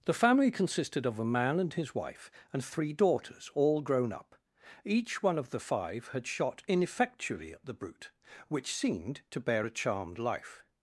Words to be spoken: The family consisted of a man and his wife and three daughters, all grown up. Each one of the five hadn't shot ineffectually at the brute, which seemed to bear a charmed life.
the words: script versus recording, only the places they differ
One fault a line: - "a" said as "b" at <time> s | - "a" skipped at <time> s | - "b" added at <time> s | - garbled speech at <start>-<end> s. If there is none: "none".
- "hadn't" said as "had" at 6.1 s